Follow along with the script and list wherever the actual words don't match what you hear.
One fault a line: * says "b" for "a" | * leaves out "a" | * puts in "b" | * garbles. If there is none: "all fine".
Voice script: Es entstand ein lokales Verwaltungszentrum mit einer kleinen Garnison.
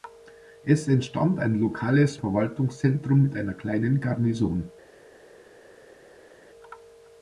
all fine